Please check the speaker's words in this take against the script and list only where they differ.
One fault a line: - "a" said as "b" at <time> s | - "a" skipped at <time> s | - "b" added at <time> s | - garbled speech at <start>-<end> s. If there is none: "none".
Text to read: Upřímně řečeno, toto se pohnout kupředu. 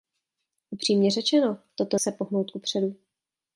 none